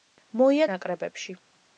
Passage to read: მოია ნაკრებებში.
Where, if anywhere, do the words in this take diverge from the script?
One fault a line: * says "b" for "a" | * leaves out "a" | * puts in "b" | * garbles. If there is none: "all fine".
all fine